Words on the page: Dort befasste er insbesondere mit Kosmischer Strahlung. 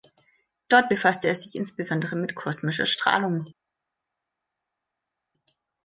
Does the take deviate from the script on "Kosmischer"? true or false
false